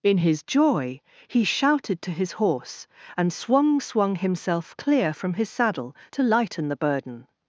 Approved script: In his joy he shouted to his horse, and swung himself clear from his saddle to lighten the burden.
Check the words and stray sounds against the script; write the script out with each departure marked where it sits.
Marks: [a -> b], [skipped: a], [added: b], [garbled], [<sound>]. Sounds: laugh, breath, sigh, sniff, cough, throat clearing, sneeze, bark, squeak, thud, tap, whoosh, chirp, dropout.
In his joy he shouted to his horse, and swung [added: swung] himself clear from his saddle to lighten the burden.